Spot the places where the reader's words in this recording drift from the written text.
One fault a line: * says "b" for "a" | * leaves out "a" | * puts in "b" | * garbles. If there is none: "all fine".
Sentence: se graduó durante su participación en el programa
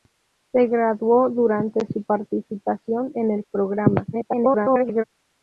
* garbles